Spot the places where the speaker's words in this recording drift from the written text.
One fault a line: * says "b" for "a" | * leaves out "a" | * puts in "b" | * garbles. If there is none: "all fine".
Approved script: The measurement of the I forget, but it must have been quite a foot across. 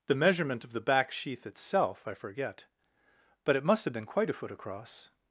* puts in "back sheath itself"